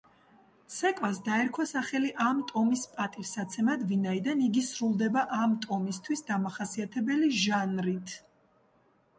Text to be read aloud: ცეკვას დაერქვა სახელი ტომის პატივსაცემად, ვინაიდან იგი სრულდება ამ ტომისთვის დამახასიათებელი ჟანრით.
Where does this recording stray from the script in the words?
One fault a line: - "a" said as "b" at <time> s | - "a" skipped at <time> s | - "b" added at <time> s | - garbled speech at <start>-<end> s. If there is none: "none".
- "ამ" added at 2.2 s